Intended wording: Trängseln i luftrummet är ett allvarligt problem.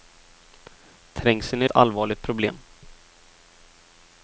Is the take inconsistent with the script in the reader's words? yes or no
yes